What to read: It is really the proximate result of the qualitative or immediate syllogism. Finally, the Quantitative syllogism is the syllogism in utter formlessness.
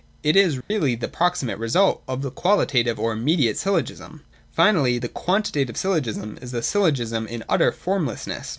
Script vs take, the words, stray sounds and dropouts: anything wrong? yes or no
yes